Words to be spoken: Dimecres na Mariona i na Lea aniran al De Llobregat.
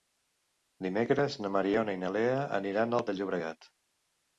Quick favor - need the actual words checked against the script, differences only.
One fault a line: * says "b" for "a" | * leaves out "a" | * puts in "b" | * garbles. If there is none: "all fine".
all fine